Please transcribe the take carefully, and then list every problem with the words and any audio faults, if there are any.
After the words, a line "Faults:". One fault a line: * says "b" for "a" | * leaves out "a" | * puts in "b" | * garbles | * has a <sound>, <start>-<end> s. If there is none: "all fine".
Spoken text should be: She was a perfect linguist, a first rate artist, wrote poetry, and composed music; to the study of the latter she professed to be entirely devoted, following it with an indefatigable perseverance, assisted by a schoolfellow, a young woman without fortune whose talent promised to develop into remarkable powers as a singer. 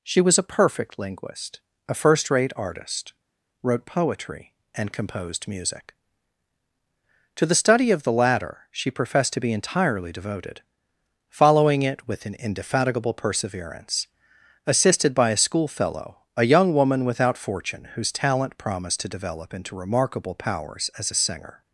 She was a perfect linguist, a first rate artist, wrote poetry, and composed music; to the study of the latter she professed to be entirely devoted, following it with an indefatigable perseverance, assisted by a schoolfellow, a young woman without fortune whose talent promised to develop into remarkable powers as a singer.
Faults:
all fine